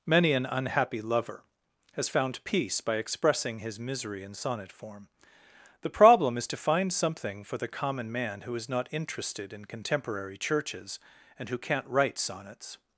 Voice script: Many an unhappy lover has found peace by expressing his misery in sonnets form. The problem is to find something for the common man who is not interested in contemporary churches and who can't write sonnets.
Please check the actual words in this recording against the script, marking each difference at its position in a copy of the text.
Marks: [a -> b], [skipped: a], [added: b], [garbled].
Many an unhappy lover has found peace by expressing his misery in [sonnets -> sonnet] form. The problem is to find something for the common man who is not interested in contemporary churches and who can't write sonnets.